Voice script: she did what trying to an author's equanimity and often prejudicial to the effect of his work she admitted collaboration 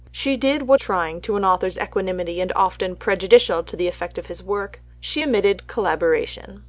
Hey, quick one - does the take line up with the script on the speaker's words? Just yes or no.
yes